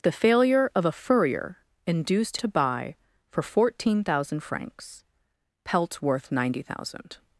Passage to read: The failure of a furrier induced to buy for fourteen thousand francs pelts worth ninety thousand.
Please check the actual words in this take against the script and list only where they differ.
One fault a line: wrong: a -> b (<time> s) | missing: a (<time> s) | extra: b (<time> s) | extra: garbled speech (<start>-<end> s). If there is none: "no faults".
no faults